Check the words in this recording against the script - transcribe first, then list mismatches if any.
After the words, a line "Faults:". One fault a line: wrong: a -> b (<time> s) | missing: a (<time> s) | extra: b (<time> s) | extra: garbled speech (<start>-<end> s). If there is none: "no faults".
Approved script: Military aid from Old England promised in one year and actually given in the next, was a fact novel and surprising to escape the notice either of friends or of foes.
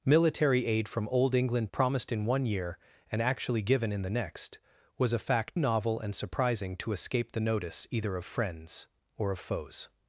Military aid from Old England promised in one year and actually given in the next, was a fact novel and surprising to escape the notice either of friends or of foes.
Faults:
no faults